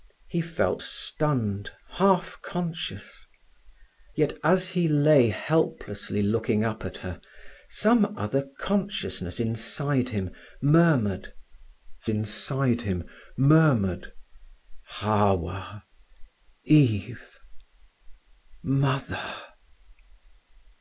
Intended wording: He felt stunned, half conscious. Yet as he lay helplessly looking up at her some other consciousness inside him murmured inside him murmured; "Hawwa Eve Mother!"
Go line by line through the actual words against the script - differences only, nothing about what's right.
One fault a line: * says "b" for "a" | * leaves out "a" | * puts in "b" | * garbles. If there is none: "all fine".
all fine